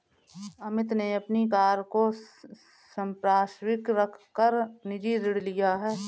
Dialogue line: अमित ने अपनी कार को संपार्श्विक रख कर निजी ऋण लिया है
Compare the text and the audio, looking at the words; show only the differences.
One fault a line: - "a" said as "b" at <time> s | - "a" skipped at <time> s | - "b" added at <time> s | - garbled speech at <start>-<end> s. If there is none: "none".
none